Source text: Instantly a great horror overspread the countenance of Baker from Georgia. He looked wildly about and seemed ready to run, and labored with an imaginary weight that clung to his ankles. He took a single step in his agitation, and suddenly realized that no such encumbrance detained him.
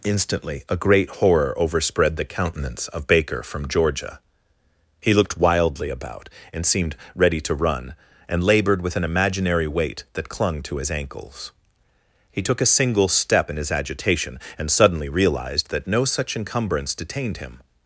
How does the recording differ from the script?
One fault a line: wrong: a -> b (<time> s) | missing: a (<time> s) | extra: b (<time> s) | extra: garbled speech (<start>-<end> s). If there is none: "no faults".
no faults